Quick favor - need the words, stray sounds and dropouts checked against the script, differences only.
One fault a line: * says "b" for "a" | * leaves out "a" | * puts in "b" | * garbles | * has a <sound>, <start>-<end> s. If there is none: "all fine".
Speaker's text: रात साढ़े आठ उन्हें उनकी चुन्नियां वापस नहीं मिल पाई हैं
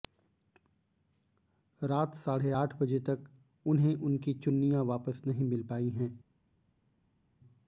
* puts in "बजे तक"